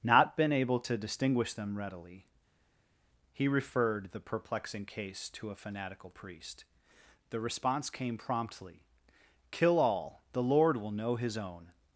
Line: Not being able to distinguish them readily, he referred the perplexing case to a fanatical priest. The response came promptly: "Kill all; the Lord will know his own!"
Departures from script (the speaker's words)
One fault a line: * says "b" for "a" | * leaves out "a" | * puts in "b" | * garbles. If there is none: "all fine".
* says "been" for "being"